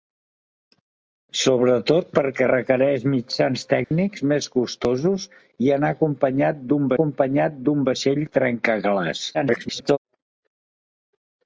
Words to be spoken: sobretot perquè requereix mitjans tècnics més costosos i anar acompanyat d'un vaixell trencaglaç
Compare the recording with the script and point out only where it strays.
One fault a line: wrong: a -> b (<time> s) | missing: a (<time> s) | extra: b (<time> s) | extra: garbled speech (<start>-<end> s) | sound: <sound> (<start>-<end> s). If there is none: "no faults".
sound: dropout (3.8-3.9 s)
extra: acompanyat d'un (7.0 s)
extra: garbled speech (9.3-10.0 s)